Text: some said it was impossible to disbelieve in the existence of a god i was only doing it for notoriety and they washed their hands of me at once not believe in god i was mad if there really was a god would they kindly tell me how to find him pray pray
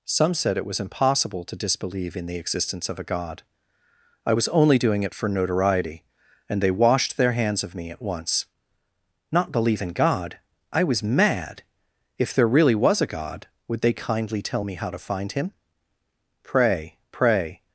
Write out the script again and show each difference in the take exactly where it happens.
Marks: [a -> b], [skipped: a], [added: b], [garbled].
some said it was impossible to disbelieve in the existence of a god i was only doing it for notoriety and they washed their hands of me at once not believe in god i was mad if there really was a god would they kindly tell me how to find him pray pray